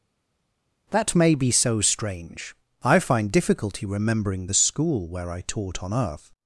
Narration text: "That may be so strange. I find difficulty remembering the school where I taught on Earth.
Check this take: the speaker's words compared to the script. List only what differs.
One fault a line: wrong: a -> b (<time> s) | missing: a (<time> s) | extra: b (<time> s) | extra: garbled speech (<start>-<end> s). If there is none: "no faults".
no faults